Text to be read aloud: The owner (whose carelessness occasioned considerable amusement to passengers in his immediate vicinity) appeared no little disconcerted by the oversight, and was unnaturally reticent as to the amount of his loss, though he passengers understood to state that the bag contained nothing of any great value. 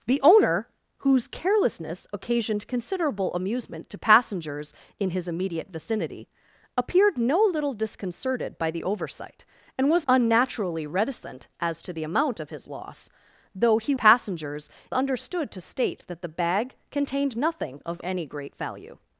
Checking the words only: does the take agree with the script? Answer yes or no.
yes